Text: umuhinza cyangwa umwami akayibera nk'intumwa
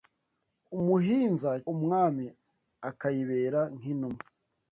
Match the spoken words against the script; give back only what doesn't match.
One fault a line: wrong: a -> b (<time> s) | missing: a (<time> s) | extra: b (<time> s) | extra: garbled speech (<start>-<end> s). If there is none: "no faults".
missing: cyangwa (1.5 s)